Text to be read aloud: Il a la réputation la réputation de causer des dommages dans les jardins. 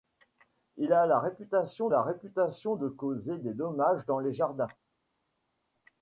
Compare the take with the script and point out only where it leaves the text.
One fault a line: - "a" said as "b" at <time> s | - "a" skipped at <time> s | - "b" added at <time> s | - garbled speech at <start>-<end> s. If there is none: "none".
none